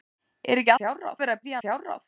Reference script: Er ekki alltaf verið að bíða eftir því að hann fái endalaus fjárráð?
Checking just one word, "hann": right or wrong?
wrong